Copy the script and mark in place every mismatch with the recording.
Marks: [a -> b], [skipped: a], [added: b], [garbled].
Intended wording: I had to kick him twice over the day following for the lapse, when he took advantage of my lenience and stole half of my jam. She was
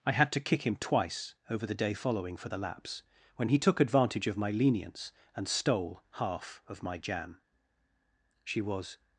I had to kick him twice over the day following for the lapse, when he took advantage of my lenience and stole half of my jam. She was